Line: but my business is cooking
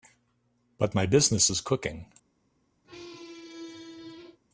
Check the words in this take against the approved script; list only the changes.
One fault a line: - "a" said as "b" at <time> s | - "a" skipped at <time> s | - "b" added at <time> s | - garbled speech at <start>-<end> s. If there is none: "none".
none